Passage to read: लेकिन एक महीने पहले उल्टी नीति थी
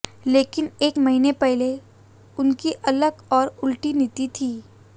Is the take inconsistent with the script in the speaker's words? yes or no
yes